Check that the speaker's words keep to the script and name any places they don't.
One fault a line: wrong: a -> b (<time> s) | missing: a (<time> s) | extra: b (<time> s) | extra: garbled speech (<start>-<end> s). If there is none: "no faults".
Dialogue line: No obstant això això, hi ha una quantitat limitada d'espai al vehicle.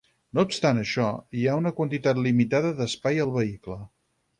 missing: això (1.1 s)